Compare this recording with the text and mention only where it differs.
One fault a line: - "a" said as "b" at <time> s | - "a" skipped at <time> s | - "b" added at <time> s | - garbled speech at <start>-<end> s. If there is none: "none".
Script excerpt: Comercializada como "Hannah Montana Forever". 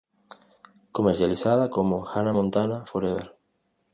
none